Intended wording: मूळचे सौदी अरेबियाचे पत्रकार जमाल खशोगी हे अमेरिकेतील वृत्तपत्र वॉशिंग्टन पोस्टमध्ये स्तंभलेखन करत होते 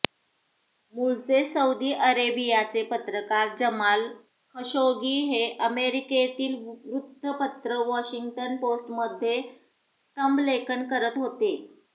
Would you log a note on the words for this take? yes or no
no